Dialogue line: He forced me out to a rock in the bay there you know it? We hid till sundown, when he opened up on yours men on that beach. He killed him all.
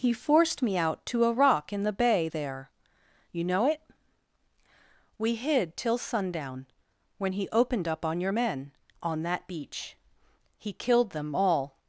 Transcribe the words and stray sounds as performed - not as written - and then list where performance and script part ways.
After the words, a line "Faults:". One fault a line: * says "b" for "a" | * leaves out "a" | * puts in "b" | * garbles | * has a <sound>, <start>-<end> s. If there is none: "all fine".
He forced me out to a rock in the bay there you know it? We hid till sundown, when he opened up on your men on that beach. He killed them all.
Faults:
* says "your" for "yours"
* says "them" for "him"